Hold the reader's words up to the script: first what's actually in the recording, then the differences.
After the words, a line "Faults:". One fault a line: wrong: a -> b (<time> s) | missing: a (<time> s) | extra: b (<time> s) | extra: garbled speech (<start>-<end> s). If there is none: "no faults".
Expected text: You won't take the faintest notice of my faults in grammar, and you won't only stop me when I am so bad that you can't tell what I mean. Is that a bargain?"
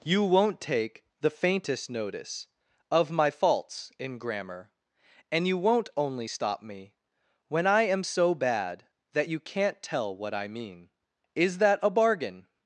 You won't take the faintest notice of my faults in grammar, and you won't only stop me when I am so bad that you can't tell what I mean. Is that a bargain?"
Faults:
no faults